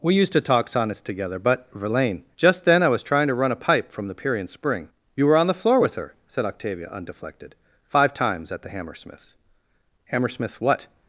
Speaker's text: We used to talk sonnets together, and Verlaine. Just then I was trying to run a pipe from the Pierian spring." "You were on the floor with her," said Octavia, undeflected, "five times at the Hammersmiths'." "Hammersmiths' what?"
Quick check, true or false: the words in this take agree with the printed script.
false